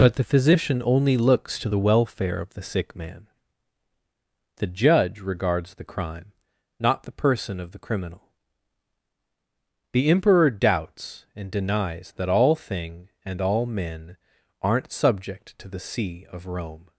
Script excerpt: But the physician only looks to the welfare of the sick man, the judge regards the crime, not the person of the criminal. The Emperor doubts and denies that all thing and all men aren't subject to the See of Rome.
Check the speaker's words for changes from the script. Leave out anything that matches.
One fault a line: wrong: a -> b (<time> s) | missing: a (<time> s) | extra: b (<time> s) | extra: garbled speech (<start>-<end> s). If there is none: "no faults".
no faults